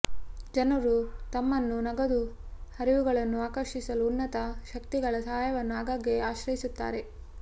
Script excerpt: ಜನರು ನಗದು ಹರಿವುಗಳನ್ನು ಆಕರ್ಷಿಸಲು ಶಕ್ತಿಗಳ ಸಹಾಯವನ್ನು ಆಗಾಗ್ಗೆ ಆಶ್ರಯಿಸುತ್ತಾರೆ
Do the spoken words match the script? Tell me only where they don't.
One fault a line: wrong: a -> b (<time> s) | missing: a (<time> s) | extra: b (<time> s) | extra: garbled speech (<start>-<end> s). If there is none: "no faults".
extra: ತಮ್ಮನ್ನು (1.3 s)
extra: ಉನ್ನತ (4.1 s)